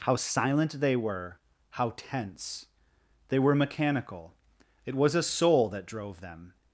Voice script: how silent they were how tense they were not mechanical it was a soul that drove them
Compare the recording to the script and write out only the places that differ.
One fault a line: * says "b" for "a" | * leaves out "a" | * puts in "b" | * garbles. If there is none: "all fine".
* leaves out "not"